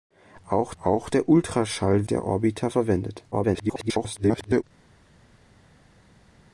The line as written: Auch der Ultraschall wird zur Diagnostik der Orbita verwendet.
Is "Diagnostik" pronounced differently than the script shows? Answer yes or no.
yes